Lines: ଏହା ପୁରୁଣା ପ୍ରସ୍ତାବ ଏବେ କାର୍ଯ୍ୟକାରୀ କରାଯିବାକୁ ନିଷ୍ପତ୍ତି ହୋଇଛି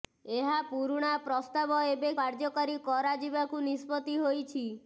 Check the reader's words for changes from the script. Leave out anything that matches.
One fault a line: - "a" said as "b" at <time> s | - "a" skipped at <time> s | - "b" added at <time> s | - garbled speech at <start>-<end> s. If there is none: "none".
none